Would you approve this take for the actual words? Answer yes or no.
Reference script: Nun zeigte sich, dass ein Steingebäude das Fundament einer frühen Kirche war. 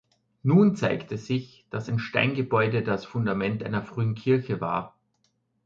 yes